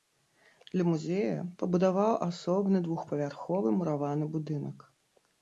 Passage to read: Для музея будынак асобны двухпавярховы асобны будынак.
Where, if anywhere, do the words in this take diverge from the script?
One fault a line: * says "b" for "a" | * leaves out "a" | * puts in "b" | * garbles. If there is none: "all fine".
* says "пабудаваў" for "будынак"
* says "мураваны" for "асобны"